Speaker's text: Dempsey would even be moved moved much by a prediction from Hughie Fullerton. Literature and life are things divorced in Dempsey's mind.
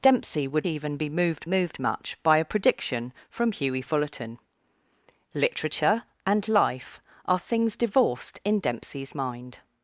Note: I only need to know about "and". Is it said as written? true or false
true